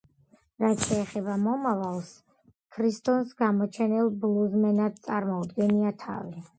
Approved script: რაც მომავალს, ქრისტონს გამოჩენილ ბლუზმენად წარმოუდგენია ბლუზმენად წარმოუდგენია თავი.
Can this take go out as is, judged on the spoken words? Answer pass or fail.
fail